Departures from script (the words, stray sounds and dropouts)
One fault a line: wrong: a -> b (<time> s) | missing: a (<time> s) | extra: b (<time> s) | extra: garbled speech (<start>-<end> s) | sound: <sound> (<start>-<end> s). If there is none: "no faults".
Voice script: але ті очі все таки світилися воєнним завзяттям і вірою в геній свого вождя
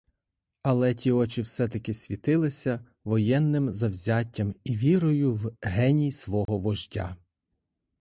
sound: dropout (6.5-6.5 s)